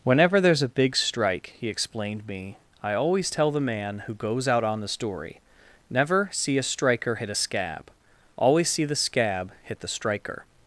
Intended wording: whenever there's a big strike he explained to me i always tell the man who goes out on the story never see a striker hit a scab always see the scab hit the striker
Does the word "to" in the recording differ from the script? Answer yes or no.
yes